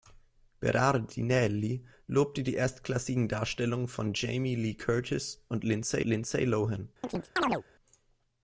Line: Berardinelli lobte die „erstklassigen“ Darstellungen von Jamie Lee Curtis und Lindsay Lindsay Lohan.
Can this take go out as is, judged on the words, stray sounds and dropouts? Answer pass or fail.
fail